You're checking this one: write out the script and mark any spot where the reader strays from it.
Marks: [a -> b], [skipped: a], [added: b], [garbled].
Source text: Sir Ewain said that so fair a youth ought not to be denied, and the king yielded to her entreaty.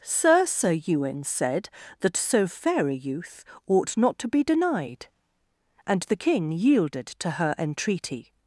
Sir [added: sir] Ewain said that so fair a youth ought not to be denied, and the king yielded to her entreaty.